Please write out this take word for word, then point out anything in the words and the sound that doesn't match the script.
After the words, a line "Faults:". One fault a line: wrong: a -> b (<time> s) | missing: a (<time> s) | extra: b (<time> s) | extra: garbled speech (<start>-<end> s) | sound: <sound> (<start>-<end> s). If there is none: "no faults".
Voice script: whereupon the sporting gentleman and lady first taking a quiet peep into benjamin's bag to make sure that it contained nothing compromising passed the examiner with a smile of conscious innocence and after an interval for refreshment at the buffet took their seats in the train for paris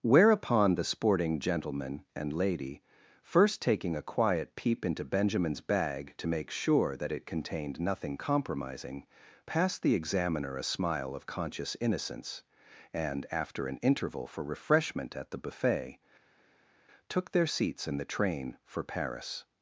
whereupon the sporting gentleman and lady first taking a quiet peep into benjamin's bag to make sure that it contained nothing compromising passed the examiner a smile of conscious innocence and after an interval for refreshment at the buffet took their seats in the train for paris
Faults:
missing: with (10.5 s)